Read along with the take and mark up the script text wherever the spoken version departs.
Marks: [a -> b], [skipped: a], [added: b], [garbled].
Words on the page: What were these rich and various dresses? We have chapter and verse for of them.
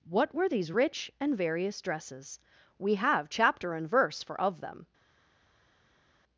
What were these rich and various dresses? We have chapter and verse for of them.